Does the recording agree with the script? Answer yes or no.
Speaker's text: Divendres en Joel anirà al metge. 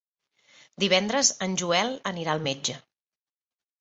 yes